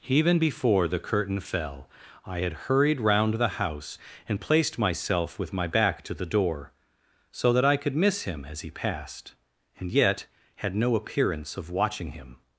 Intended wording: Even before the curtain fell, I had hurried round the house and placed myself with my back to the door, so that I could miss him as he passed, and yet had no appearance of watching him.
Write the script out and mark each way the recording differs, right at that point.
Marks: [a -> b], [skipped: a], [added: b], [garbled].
Even before the curtain fell, I had hurried round the house and placed myself with my back to the door, so that I could miss him as he passed, and yet had no appearance of watching him.